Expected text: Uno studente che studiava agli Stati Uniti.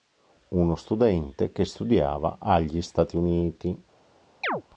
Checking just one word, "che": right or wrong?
right